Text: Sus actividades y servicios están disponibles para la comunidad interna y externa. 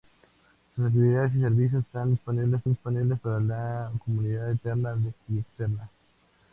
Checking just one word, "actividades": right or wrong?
right